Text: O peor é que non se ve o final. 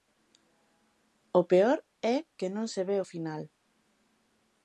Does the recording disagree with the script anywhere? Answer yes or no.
no